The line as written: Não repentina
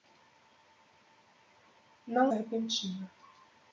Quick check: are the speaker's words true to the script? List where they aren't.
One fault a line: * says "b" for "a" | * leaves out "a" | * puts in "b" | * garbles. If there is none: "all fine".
all fine